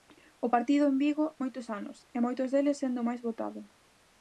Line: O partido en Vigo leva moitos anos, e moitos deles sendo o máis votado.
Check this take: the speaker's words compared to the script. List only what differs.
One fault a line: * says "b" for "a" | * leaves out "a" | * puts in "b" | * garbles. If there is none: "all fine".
* leaves out "leva"